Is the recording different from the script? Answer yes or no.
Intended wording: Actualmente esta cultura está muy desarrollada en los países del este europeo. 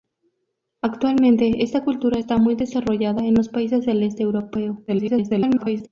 yes